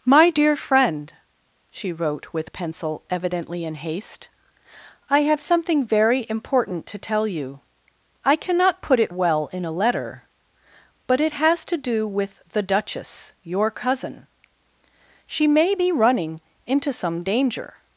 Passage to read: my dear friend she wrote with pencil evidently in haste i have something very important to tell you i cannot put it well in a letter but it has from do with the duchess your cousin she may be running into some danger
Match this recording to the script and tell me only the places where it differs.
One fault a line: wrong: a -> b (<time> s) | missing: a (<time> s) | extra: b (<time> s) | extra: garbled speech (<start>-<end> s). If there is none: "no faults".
wrong: from -> to (11.6 s)